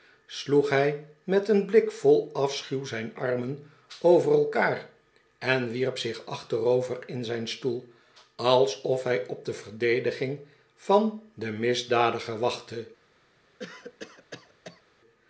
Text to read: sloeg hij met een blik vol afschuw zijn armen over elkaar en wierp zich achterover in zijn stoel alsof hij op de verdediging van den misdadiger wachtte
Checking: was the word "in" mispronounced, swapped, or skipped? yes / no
no